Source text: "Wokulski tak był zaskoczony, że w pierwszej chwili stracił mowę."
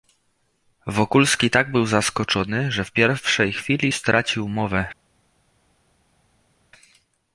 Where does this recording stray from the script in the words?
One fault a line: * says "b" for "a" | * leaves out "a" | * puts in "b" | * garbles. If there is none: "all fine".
all fine